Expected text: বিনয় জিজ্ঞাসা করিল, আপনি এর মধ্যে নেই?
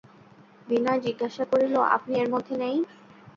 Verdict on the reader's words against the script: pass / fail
pass